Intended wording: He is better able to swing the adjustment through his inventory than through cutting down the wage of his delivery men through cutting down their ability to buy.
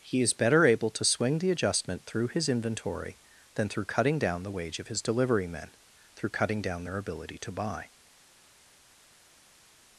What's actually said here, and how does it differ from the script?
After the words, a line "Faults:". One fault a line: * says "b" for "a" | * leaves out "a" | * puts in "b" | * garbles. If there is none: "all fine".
He is better able to swing the adjustment through his inventory than through cutting down the wage of his delivery men through cutting down their ability to buy.
Faults:
all fine